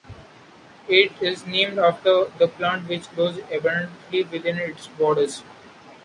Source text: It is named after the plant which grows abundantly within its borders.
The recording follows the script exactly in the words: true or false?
true